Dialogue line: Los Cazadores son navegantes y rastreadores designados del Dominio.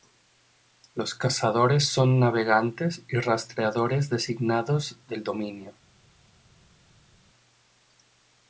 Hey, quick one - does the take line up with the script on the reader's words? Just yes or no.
yes